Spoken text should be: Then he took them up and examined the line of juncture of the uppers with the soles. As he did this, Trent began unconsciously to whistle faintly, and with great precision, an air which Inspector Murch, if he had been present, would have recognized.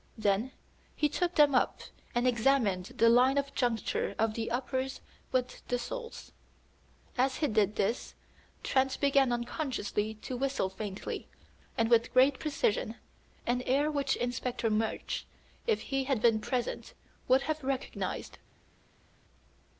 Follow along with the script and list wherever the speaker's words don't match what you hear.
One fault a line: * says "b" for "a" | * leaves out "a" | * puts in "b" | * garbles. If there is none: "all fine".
all fine